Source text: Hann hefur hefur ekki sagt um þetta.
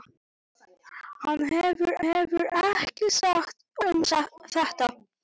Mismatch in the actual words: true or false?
false